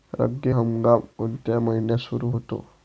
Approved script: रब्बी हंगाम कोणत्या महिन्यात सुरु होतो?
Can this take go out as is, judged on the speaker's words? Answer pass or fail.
pass